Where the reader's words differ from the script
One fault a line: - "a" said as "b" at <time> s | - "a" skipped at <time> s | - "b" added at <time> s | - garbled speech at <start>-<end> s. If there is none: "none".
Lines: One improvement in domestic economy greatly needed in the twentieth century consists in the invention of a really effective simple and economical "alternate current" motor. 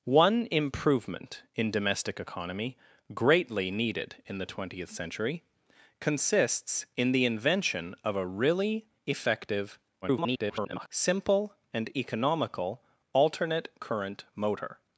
- garbled speech at 10.0-10.9 s